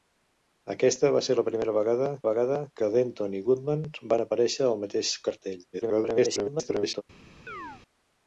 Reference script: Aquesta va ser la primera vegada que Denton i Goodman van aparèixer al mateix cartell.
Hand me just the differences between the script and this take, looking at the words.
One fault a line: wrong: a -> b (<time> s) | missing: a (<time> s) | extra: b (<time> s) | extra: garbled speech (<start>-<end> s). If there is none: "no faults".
extra: vegada (2.3 s)
extra: garbled speech (5.7-7.0 s)